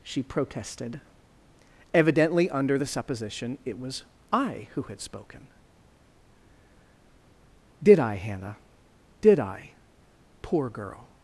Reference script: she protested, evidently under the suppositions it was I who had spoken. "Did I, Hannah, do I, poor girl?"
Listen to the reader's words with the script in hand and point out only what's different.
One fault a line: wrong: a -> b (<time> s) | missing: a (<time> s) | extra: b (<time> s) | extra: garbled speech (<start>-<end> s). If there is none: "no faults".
wrong: suppositions -> supposition (2.9 s)
wrong: do -> did (9.2 s)